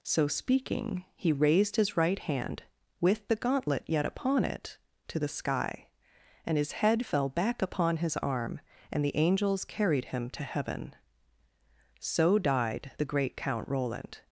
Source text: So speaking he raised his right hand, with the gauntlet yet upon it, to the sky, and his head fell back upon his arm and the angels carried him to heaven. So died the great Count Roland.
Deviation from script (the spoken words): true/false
false